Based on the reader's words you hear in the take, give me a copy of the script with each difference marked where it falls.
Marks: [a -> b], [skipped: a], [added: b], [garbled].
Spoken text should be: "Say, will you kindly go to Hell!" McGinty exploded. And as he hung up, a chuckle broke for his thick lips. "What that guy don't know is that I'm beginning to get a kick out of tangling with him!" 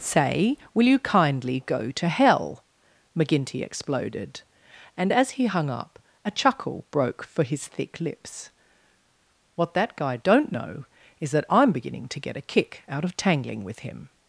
"Say, will you kindly go to Hell!" McGinty exploded. And as he hung up, a chuckle broke for his thick lips. "What that guy don't know is that I'm beginning to get a kick out of tangling with him!"